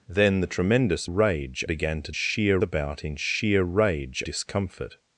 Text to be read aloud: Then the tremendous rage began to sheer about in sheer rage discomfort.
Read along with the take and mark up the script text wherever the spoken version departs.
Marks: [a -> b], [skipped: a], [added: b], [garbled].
Then the tremendous rage began to sheer about in sheer rage discomfort.